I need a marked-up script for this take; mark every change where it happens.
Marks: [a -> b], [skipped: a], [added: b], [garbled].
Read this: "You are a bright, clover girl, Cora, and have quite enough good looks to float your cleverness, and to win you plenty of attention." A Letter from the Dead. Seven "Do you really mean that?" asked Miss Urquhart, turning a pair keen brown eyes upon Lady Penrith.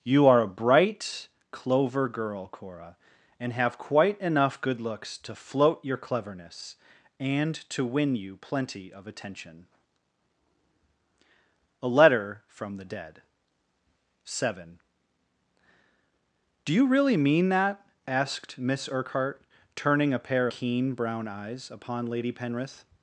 "You are a bright, clover girl, Cora, and have quite enough good looks to float your cleverness, and to win you plenty of attention." A Letter from the Dead. Seven "Do you really mean that?" asked Miss Urquhart, turning a pair keen brown eyes upon Lady Penrith.